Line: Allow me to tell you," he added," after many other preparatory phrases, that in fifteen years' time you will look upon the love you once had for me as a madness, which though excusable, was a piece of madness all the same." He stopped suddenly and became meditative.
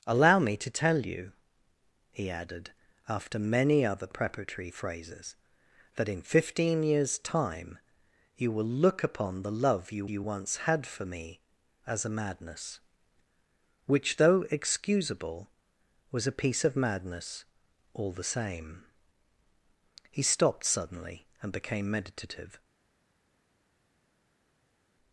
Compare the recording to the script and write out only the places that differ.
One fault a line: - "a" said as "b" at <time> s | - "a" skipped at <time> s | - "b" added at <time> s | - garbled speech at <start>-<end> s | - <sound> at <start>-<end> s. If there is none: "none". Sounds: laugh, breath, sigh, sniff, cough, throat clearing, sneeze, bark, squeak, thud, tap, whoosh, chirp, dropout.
- "you" added at 10.1 s